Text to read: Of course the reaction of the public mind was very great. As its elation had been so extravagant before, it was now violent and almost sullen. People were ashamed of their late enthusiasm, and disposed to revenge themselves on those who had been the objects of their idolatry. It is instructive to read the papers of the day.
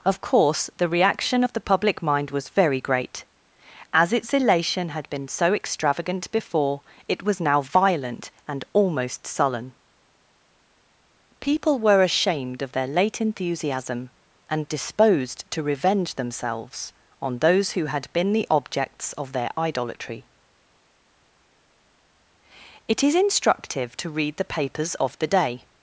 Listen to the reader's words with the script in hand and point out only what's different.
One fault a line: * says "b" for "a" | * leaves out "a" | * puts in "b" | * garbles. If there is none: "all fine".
all fine